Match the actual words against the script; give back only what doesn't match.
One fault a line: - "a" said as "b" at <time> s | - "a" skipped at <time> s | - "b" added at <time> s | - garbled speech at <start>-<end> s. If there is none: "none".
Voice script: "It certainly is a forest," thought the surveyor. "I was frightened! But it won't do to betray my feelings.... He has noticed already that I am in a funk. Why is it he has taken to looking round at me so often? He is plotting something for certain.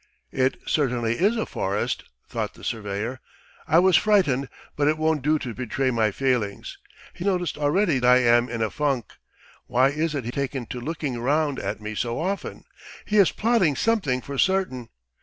- "has" skipped at 7.2 s
- "that" skipped at 8.0 s
- "has" skipped at 10.3 s